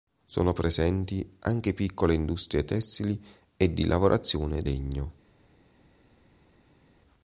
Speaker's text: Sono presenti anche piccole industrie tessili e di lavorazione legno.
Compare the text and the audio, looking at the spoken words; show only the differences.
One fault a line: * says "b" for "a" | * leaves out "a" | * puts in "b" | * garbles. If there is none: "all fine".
all fine